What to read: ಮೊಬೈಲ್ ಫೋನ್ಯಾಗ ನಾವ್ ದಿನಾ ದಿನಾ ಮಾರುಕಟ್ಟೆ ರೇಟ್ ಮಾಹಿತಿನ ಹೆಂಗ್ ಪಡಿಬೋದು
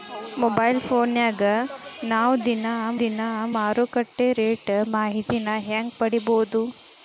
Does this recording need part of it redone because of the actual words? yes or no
no